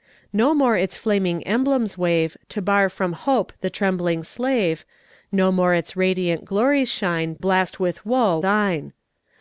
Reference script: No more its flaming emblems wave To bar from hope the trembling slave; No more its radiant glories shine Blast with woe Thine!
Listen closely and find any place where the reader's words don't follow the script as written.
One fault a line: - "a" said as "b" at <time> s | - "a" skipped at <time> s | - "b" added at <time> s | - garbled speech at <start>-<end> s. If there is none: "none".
none